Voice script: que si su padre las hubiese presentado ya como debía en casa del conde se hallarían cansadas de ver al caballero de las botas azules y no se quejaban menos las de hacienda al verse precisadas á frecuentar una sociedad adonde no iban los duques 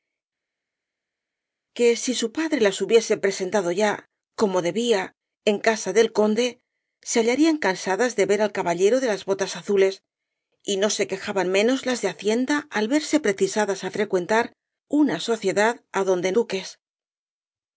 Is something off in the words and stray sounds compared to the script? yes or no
yes